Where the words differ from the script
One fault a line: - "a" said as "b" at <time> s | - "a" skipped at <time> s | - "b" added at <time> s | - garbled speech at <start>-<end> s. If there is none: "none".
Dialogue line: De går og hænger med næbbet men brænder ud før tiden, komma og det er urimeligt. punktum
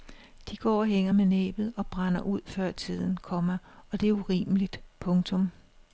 - "men" said as "og" at 1.8 s